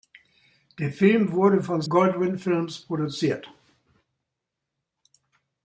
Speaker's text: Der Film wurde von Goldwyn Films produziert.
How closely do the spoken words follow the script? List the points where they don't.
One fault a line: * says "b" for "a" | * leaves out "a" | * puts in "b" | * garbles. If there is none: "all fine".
all fine